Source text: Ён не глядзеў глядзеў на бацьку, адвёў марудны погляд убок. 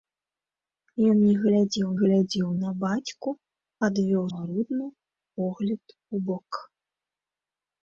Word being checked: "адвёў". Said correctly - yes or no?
yes